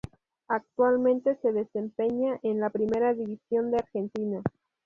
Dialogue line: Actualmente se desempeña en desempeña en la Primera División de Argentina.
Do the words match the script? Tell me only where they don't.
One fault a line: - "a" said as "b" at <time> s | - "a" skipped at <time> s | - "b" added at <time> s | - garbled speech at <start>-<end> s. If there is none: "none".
- "desempeña en" skipped at 2.6 s